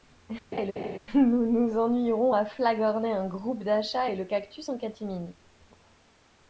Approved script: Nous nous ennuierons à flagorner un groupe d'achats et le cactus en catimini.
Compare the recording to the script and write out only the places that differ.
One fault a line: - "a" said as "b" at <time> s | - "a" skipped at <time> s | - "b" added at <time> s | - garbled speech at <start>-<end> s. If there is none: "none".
none